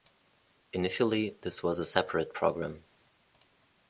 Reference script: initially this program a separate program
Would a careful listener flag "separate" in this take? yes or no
no